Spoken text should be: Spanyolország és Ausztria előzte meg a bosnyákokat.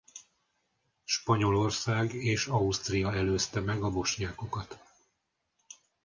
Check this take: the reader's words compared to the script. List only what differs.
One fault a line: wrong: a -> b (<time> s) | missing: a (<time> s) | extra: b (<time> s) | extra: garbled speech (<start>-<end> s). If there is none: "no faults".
no faults